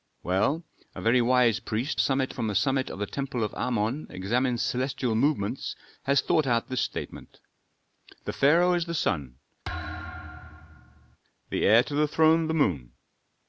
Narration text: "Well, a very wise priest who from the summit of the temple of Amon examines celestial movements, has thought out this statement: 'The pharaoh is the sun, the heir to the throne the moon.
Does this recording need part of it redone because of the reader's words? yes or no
yes